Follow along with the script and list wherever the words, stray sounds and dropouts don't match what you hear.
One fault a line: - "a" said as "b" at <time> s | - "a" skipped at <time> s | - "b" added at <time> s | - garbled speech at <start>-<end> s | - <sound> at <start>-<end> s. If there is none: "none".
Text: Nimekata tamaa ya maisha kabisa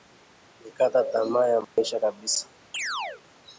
- dropout at 1.6-1.8 s
- chirp at 2.7-3.2 s